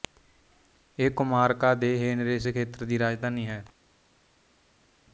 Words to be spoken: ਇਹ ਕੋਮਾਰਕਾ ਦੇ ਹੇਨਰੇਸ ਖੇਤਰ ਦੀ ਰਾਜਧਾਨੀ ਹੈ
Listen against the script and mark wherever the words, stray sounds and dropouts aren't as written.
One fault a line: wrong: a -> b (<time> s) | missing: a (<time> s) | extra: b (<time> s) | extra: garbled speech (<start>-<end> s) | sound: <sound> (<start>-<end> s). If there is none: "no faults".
no faults